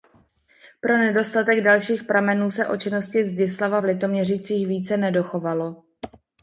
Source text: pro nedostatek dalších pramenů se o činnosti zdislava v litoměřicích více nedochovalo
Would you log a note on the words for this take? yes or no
no